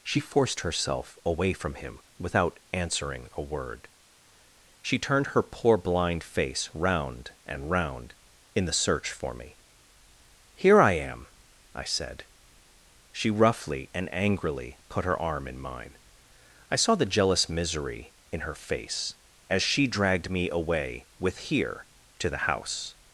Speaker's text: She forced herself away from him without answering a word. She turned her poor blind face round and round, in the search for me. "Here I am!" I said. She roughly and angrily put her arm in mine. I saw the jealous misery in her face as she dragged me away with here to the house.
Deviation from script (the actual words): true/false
false